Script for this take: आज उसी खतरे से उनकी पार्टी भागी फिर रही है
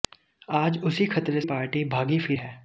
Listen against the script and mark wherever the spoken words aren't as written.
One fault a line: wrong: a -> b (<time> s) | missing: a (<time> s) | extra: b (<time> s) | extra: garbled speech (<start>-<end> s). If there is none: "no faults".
missing: से उनकी (1.4 s)
missing: रही (2.4 s)